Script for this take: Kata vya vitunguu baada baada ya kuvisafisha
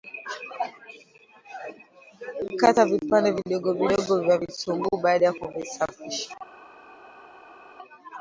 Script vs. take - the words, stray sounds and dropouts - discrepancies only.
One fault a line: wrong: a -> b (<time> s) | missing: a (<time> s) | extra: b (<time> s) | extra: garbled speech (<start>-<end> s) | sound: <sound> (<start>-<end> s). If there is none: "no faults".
extra: vipande vidogo vidogo (2.9 s)
missing: baada (5.3 s)